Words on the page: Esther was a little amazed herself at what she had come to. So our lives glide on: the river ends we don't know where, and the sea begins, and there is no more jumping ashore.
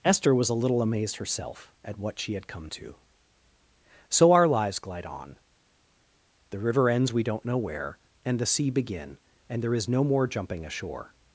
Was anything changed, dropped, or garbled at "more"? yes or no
no